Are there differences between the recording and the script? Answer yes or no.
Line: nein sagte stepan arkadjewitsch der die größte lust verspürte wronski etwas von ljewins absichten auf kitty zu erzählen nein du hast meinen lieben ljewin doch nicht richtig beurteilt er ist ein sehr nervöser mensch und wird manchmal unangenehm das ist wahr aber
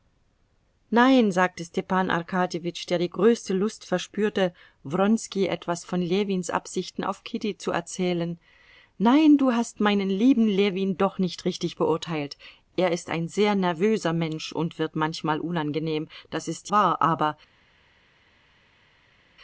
no